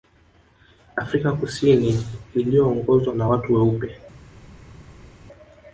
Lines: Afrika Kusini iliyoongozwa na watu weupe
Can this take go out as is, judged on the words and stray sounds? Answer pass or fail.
pass